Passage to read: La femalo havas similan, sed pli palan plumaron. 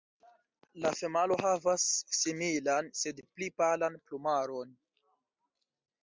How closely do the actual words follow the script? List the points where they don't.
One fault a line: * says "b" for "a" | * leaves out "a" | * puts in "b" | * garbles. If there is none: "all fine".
all fine